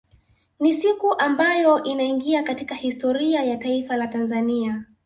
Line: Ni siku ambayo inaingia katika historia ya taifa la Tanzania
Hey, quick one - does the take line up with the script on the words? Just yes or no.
yes